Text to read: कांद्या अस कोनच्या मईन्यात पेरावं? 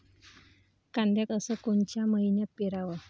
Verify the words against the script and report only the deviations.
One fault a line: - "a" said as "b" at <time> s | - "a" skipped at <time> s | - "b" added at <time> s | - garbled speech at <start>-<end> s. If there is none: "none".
none